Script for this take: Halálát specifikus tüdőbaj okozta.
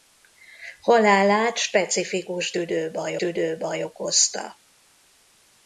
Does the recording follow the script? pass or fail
fail